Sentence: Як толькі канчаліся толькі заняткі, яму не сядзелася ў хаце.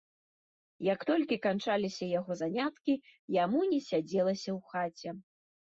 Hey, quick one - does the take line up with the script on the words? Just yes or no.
no